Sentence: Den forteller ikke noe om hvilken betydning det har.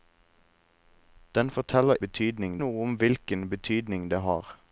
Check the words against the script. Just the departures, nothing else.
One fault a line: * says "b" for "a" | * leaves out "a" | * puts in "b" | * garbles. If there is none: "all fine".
* says "betydning" for "ikke"